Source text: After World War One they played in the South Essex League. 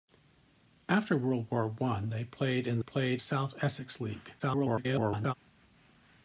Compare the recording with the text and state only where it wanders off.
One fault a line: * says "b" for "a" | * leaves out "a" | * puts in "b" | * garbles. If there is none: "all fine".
* says "played" for "the"
* garbles